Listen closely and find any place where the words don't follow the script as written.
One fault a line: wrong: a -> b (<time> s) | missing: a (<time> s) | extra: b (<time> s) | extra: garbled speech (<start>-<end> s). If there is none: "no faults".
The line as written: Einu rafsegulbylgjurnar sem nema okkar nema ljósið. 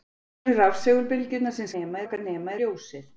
no faults